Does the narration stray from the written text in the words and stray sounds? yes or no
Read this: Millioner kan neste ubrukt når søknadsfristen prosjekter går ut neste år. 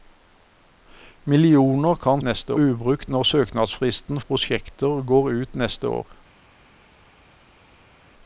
no